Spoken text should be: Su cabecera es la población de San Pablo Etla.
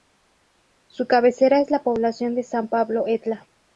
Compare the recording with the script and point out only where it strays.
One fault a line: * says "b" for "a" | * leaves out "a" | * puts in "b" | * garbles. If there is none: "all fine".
all fine